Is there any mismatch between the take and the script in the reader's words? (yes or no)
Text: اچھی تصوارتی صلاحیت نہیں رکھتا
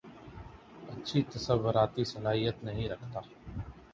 no